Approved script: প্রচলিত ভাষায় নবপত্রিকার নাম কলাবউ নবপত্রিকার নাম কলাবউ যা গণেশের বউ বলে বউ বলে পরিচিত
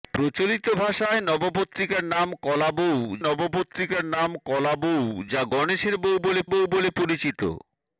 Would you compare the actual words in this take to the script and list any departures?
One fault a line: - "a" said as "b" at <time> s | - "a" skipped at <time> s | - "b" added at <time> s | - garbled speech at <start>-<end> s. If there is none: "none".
none